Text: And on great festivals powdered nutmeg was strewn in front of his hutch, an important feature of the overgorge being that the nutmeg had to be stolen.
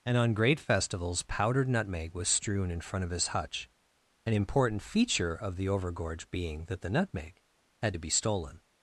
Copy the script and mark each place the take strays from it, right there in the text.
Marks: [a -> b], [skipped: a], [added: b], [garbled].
And on great festivals powdered nutmeg was strewn in front of his hutch, an important feature of the overgorge being that the nutmeg had to be stolen.